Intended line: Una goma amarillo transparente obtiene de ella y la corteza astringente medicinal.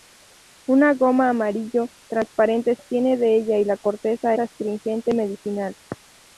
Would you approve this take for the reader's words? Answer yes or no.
yes